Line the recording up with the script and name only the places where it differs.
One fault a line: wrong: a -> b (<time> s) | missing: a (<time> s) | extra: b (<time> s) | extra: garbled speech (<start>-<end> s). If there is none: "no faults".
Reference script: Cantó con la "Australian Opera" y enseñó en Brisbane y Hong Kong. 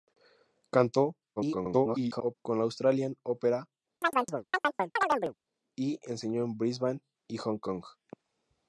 extra: garbled speech (1.4-2.4 s)